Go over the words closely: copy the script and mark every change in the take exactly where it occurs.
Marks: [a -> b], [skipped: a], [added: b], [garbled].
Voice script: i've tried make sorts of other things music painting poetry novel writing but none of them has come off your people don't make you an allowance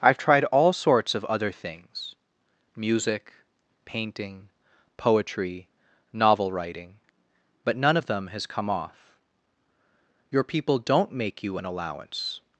i've tried [make -> all] sorts of other things music painting poetry novel writing but none of them has come off your people don't make you an allowance